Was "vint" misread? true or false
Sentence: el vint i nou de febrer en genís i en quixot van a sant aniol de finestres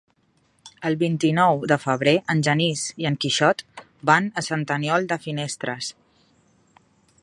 false